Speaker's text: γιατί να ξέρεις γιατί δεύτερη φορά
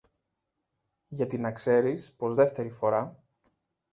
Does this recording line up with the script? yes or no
no